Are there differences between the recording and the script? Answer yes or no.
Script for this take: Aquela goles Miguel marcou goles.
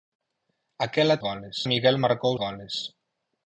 no